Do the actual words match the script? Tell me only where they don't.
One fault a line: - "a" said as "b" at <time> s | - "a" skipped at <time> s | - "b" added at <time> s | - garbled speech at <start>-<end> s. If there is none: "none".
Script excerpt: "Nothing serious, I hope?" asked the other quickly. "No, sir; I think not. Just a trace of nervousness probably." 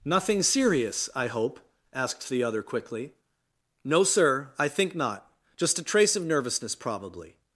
none